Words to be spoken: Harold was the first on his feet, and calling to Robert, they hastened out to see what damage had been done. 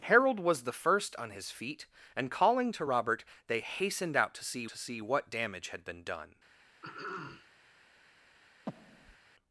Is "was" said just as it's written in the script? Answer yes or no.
yes